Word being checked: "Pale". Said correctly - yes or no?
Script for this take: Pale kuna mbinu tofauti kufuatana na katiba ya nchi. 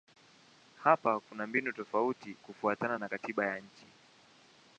no